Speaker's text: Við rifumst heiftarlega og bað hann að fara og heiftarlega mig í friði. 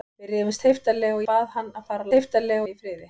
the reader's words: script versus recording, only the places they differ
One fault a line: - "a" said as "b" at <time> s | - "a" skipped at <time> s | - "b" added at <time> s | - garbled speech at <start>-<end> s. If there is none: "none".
none